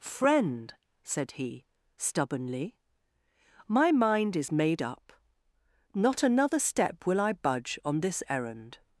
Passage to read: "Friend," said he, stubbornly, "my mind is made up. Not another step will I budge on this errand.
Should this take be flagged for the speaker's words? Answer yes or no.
no